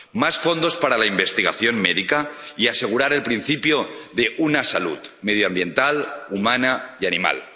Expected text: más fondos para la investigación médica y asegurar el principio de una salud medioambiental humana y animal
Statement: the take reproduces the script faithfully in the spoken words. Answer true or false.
true